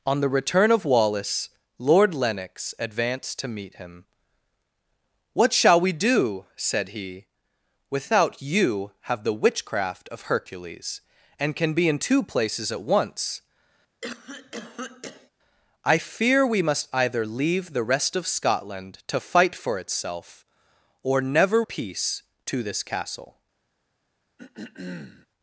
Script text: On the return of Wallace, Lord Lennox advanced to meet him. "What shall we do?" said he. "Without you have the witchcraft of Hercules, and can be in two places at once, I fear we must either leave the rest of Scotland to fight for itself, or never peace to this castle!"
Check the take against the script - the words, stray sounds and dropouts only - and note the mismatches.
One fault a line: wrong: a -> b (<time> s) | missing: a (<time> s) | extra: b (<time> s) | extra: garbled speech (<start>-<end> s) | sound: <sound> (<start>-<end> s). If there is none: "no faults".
sound: cough (14.0-15.3 s)
sound: throat clearing (24.4-25.3 s)